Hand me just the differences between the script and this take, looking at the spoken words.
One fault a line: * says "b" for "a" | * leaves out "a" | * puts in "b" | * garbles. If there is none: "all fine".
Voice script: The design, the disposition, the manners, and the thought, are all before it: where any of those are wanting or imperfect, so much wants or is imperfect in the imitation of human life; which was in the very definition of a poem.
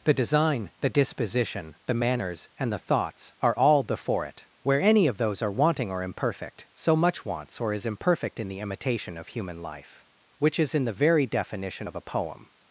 * says "thoughts" for "thought"
* says "is" for "was"